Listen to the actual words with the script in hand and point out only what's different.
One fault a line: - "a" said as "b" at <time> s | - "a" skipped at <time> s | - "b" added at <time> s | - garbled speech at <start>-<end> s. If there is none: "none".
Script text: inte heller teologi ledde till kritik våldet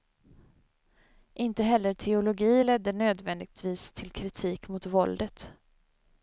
- "nödvändigtvis" added at 2.9 s
- "mot" added at 4.7 s